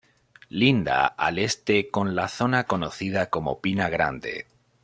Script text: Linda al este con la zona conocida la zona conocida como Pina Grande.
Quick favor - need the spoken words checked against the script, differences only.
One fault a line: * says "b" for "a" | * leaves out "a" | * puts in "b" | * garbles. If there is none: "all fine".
* leaves out "la zona conocida"